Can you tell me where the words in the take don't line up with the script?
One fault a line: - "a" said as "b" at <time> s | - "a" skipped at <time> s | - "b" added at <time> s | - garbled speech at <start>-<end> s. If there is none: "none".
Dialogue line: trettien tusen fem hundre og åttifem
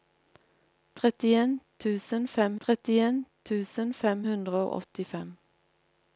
- "trettien tusen fem" added at 2.6 s